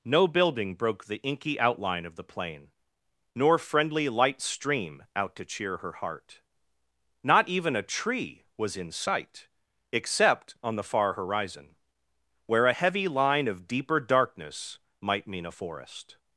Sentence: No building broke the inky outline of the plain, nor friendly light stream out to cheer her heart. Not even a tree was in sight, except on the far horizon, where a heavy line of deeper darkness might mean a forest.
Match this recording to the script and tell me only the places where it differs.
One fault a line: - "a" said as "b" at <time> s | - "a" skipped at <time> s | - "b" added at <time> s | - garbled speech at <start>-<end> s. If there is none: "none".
none